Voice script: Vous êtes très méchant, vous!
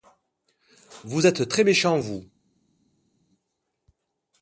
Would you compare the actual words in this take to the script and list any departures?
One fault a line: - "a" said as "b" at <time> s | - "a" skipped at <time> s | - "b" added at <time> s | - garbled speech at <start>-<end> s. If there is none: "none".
none